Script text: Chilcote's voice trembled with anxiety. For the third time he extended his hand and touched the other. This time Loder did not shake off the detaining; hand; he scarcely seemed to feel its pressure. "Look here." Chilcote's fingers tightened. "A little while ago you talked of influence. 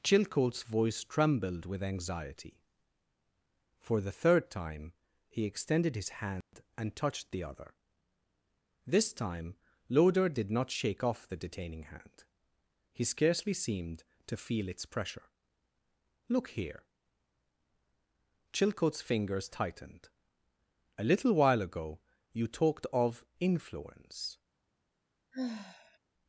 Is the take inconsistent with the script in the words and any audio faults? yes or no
yes